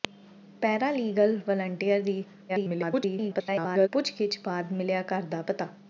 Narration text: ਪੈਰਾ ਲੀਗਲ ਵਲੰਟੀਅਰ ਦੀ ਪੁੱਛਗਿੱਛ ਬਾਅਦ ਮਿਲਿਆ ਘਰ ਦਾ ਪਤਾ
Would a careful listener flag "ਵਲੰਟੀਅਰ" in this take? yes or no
no